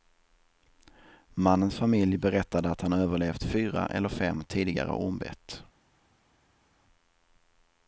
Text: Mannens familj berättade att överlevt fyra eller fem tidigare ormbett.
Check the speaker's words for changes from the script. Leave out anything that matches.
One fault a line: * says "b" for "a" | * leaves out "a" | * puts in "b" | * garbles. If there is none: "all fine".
* puts in "han"